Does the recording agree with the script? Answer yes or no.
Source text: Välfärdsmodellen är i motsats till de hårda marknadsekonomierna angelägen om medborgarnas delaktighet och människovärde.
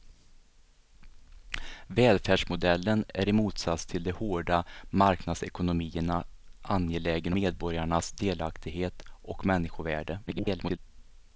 no